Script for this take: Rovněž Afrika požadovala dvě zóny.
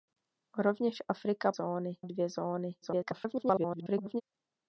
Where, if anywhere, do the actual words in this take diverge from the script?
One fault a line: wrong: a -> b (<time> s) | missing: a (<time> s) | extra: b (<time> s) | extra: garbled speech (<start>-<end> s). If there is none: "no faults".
wrong: požadovala -> zóny (1.5 s)
extra: garbled speech (2.8-4.2 s)